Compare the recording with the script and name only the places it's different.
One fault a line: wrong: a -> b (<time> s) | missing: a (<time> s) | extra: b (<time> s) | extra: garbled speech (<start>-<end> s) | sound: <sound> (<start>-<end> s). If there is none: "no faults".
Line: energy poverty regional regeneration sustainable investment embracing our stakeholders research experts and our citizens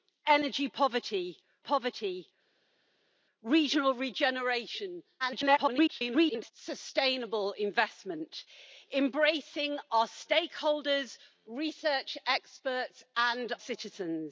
extra: poverty (1.6 s)
extra: garbled speech (5.2-6.5 s)
missing: our (13.5 s)